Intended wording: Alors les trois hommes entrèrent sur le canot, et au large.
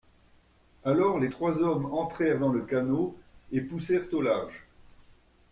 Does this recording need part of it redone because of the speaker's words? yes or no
yes